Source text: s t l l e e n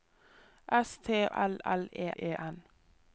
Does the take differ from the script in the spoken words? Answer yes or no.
no